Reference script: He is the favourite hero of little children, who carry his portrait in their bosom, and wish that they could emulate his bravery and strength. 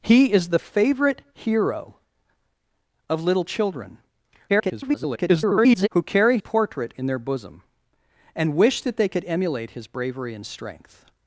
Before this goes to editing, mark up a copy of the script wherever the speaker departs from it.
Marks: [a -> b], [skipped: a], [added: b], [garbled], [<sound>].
He is the favourite hero of little children, [garbled] who carry [skipped: his] portrait in their bosom, and wish that they could emulate his bravery and strength.